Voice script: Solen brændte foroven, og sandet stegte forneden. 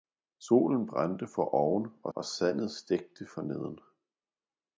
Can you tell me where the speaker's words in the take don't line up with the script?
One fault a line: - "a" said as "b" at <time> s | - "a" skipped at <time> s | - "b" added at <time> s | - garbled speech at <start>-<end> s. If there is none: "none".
- "og" added at 2.1 s